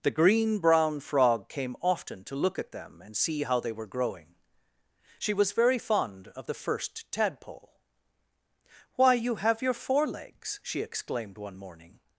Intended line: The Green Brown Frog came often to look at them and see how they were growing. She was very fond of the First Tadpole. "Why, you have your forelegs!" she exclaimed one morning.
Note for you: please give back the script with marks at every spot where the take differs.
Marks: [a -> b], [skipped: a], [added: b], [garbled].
The Green Brown Frog came often to look at them and see how they were growing. She was very fond of the First Tadpole. "Why, you have your forelegs!" she exclaimed one morning.